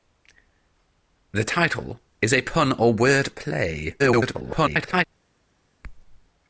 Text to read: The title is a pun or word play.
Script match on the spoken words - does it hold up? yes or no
no